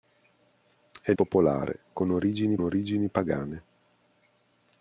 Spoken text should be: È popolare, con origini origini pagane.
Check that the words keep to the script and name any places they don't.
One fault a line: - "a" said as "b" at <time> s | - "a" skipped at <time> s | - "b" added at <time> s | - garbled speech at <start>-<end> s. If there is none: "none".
none